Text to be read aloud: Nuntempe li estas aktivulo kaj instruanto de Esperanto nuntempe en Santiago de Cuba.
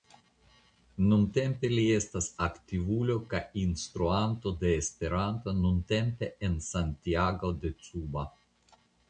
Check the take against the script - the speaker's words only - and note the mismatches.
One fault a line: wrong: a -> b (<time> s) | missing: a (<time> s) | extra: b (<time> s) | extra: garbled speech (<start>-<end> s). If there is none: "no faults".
no faults